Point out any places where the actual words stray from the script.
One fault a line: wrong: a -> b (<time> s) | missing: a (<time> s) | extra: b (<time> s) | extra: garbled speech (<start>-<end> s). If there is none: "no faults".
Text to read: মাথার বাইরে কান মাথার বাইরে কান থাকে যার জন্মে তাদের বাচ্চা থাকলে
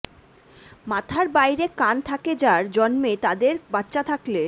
missing: মাথার বাইরে কান (1.9 s)